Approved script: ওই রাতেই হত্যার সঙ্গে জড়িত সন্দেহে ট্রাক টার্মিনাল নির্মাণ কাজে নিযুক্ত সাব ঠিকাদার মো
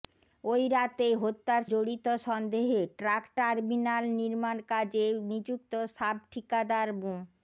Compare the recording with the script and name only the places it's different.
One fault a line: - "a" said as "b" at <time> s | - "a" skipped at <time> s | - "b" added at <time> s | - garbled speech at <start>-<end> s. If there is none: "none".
- "সঙ্গে" skipped at 1.6 s